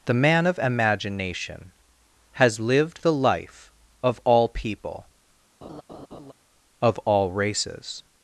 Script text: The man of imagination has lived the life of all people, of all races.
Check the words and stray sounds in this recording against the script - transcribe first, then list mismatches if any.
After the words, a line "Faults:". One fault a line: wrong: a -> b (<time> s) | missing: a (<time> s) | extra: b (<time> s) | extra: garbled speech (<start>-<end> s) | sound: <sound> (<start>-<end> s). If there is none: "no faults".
The man of imagination has lived the life of all people, of all races.
Faults:
sound: laugh (5.6-6.3 s)